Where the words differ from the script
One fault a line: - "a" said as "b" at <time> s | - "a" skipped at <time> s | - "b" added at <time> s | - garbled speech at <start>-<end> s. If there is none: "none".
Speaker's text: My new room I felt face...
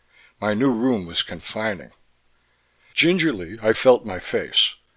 - "was confining Gingerly" added at 1.0 s
- "my" added at 4.0 s